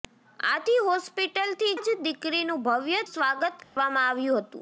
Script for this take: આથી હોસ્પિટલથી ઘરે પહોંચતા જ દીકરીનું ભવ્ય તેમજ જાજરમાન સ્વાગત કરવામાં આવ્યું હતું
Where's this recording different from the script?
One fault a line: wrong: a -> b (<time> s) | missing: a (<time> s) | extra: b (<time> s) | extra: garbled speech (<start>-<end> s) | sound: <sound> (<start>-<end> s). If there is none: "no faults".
missing: ઘરે પહોંચતા (1.7 s)
missing: તેમજ જાજરમાન (3.0 s)
sound: dropout (3.6-3.8 s)